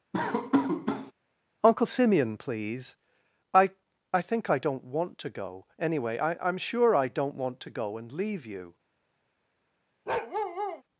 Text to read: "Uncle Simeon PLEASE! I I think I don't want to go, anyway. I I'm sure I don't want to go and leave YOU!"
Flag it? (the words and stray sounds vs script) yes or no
yes